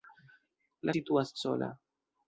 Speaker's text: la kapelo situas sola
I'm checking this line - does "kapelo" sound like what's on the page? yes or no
no